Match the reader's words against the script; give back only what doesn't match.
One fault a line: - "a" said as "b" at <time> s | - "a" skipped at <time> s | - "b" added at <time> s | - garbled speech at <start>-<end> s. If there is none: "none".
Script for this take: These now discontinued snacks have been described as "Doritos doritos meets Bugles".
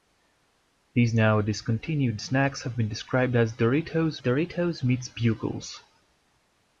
none